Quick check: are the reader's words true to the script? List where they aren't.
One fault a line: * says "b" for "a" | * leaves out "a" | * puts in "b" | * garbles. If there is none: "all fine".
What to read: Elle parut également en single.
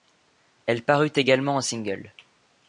all fine